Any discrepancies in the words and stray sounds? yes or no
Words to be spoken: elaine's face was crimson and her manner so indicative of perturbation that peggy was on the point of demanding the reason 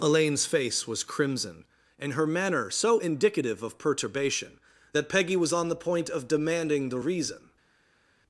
no